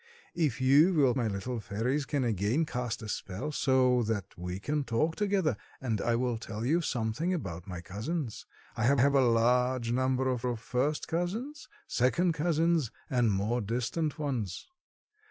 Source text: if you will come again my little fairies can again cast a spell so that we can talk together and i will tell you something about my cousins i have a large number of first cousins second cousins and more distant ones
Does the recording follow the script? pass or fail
fail